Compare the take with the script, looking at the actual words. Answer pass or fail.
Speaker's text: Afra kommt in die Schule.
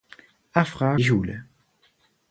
fail